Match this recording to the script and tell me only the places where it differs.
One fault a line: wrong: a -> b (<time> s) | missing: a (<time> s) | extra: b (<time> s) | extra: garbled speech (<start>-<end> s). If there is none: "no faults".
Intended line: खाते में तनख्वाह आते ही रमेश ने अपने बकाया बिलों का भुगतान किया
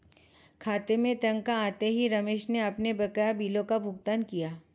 no faults